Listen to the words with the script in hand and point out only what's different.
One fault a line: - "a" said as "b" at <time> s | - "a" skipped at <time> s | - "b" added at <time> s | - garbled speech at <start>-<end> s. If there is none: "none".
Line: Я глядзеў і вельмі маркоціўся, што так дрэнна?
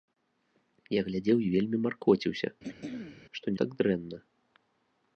none